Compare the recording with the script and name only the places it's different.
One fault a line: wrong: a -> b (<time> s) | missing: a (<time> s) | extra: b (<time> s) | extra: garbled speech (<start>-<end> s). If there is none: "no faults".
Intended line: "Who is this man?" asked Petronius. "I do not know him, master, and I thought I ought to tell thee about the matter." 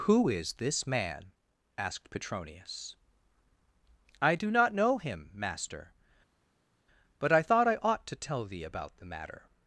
wrong: and -> but (7.2 s)